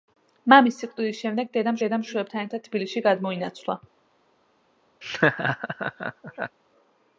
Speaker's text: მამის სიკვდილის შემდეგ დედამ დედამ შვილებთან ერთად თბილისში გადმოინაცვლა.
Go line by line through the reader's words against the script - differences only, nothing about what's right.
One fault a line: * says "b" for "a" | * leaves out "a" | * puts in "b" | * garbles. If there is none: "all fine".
all fine